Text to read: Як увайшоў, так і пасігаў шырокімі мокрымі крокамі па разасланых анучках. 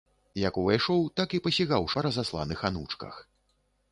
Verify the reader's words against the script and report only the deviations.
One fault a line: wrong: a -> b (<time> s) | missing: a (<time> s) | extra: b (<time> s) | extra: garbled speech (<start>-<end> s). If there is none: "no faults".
missing: шырокімі мокрымі крокамі (1.9 s)